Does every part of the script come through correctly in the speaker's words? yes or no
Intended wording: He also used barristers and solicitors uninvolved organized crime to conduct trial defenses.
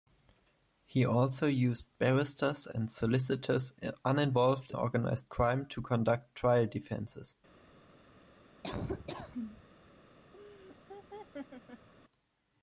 yes